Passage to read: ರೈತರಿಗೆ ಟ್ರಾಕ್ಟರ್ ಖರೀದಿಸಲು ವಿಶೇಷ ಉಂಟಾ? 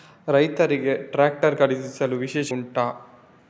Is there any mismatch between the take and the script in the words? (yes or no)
no